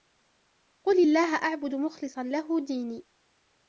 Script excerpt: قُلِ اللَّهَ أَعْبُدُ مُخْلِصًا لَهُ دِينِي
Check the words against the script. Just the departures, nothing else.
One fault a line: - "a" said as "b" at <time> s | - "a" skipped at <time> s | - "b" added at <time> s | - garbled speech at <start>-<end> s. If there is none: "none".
none